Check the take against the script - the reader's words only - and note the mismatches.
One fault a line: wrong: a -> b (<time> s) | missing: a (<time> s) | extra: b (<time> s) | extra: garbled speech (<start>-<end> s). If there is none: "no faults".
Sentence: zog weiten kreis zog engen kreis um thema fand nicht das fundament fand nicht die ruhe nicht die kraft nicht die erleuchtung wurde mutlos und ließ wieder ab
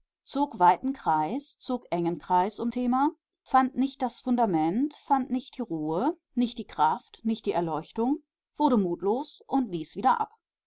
no faults